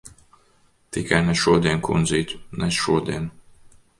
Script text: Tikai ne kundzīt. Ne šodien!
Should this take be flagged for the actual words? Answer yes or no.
yes